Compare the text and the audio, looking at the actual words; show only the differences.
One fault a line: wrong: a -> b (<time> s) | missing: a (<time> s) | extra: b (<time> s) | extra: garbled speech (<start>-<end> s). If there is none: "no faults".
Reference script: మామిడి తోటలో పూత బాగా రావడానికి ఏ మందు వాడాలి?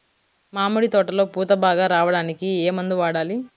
no faults